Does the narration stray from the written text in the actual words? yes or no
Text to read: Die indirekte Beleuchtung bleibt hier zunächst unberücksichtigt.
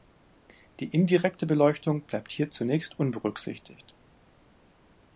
no